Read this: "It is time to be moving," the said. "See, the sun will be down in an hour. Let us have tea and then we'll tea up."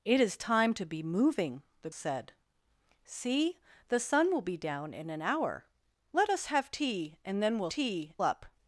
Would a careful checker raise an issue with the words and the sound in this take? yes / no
no